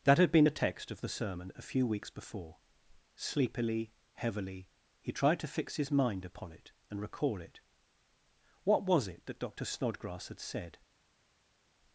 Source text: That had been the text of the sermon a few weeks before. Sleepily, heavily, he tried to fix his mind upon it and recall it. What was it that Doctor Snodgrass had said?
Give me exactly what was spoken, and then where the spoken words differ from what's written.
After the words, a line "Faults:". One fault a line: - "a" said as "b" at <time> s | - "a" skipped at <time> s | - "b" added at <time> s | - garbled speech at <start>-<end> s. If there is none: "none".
That had been the text of the sermon a few weeks before. Sleepily, heavily, he tried to fix his mind upon it and recall it. What was it that Doctor Snodgrass had said?
Faults:
none